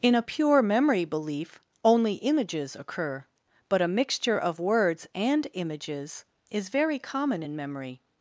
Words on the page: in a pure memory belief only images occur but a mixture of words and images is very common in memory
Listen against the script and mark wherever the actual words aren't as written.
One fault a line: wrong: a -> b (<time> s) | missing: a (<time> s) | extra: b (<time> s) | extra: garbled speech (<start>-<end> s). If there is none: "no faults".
no faults